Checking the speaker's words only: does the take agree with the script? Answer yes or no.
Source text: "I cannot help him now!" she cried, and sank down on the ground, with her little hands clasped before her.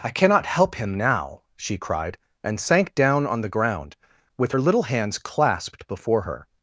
yes